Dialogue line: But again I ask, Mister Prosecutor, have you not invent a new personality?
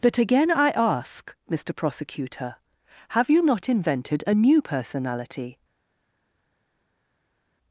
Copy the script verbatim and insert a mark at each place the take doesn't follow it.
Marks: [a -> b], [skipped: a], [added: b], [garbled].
But again I ask, Mister Prosecutor, have you not [invent -> invented] a new personality?